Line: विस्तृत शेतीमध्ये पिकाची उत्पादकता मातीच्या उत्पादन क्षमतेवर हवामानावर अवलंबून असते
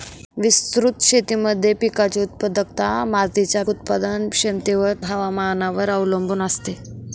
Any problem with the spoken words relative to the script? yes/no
no